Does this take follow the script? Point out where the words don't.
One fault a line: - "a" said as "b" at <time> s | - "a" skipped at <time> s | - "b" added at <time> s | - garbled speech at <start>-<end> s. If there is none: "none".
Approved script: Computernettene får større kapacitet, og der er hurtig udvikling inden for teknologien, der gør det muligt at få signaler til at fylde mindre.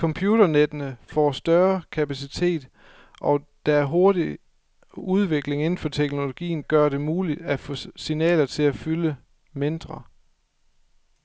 - "der" skipped at 6.6 s